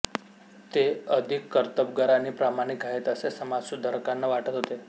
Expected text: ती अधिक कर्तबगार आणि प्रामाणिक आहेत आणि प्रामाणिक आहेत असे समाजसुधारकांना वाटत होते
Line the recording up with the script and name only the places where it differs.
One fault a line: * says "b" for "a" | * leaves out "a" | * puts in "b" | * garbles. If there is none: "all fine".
* says "ते" for "ती"
* leaves out "आणि प्रामाणिक आहेत"